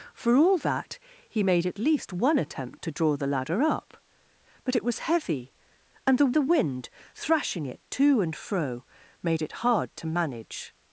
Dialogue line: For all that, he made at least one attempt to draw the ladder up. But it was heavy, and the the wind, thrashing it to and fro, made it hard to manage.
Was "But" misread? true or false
false